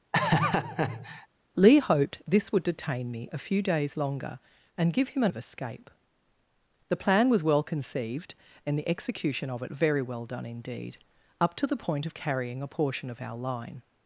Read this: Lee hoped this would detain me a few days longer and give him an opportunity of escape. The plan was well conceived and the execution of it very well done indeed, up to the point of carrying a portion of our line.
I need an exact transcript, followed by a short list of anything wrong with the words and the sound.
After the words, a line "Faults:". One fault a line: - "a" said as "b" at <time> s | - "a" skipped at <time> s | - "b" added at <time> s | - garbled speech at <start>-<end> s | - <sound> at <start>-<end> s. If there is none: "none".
Lee hoped this would detain me a few days longer and give him an of escape. The plan was well conceived and the execution of it very well done indeed, up to the point of carrying a portion of our line.
Faults:
- laugh at 0.1-1.3 s
- "opportunity" skipped at 5.3 s